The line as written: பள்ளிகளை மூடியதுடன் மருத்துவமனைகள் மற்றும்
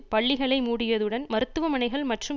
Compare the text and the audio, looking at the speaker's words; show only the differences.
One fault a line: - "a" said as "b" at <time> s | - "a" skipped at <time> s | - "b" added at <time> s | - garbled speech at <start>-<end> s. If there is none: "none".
none